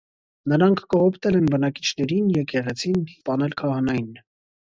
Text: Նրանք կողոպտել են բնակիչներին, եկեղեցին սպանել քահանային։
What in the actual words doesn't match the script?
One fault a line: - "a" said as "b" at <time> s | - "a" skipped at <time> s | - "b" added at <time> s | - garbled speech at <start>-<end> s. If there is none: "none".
none